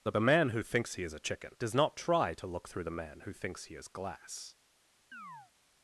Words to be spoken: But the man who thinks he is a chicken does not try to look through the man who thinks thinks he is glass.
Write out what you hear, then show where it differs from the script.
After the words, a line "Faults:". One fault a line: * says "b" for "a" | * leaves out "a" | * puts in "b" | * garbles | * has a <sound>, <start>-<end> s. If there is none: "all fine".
But the man who thinks he is a chicken does not try to look through the man who thinks he is glass.
Faults:
* leaves out "thinks"
* has a chirp, 5.1-5.5 s